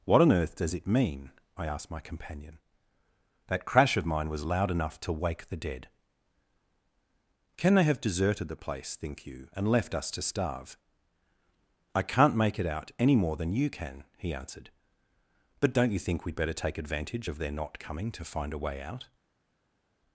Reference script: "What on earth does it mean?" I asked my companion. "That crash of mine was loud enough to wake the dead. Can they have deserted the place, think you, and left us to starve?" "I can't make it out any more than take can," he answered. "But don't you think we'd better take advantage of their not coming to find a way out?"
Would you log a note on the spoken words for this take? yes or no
yes